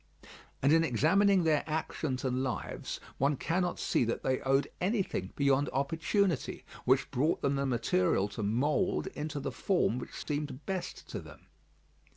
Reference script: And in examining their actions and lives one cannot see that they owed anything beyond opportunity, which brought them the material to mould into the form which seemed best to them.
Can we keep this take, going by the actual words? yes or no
yes